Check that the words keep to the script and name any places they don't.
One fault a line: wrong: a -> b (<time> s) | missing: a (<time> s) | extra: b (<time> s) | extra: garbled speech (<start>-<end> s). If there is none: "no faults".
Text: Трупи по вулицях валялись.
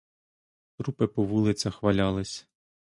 no faults